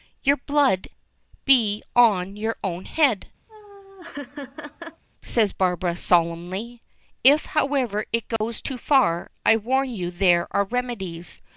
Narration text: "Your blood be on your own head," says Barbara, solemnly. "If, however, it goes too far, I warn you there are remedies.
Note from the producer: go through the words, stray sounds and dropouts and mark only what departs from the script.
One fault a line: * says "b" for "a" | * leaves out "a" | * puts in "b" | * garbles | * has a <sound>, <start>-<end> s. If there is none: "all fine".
* has a laugh, 3.5-5.0 s
* has a dropout, 8.4-8.4 s